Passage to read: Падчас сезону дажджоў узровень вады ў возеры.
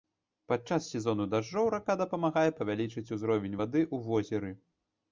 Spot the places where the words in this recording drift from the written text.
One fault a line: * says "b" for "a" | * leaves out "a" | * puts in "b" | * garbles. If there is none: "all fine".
* puts in "рака дапамагае павялічыць"